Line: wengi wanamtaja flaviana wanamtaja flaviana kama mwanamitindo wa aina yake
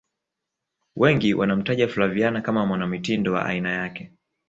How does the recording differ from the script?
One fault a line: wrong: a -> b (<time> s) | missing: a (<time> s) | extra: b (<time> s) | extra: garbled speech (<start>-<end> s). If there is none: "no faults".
missing: wanamtaja flaviana (2.4 s)